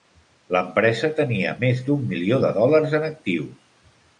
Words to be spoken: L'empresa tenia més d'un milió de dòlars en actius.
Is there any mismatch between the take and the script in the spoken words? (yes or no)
no